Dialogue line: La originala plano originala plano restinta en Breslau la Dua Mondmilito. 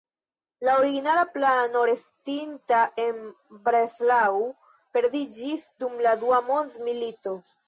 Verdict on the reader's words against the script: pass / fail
fail